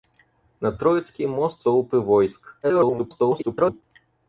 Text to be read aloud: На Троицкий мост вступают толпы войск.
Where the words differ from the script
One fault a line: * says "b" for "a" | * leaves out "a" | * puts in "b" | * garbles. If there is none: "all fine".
* leaves out "вступают"
* garbles